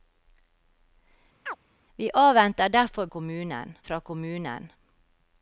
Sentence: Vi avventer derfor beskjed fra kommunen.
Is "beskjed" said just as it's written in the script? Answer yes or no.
no